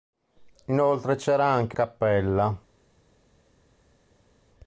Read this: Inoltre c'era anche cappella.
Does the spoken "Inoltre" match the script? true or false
true